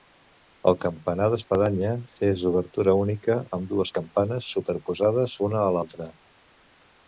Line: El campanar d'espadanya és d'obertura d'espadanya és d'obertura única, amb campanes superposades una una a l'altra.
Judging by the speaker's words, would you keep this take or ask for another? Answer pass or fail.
fail